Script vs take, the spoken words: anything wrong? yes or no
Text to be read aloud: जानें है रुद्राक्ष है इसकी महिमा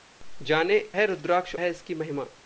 no